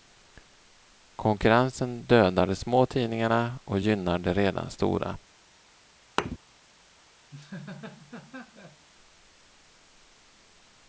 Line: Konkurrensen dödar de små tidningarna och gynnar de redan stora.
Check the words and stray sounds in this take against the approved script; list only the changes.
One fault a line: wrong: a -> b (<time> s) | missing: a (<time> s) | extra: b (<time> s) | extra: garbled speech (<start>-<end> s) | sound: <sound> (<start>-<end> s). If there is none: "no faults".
sound: thud (6.2-6.4 s)
sound: laugh (7.3-8.9 s)